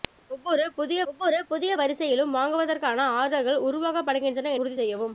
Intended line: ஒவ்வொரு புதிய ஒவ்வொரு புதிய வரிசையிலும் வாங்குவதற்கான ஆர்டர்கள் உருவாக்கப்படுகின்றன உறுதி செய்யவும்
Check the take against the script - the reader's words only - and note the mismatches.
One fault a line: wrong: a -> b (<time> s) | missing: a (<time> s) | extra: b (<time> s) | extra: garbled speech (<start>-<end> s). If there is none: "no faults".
no faults